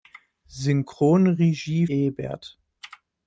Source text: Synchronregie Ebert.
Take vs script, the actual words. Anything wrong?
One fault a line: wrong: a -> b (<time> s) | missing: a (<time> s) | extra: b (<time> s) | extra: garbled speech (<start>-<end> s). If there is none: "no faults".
no faults